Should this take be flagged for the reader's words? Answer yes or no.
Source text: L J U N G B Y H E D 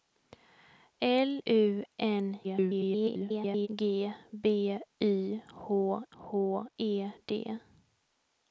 yes